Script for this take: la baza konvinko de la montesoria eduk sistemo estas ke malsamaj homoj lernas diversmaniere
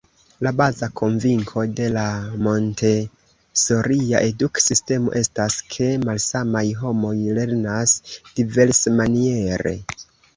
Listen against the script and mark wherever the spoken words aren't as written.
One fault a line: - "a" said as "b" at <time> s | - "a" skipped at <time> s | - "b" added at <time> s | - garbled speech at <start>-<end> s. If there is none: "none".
none